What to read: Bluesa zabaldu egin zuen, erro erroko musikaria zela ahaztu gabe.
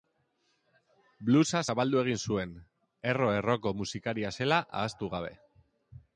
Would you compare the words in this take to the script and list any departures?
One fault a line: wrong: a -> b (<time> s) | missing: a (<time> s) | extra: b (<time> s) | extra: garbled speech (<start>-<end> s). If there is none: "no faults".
no faults